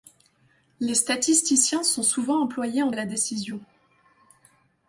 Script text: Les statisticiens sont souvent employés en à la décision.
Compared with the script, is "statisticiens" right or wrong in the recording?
right